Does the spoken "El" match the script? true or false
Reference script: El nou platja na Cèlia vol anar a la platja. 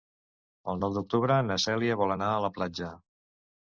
true